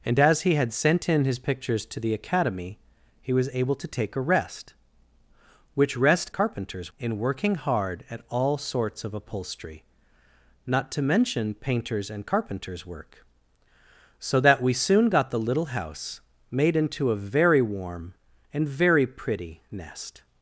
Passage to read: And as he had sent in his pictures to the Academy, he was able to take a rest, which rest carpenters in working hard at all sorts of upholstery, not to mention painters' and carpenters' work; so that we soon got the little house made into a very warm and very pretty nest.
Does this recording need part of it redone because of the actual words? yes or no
no